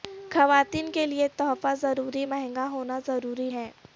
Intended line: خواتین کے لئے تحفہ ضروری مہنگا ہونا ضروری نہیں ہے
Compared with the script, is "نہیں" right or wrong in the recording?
wrong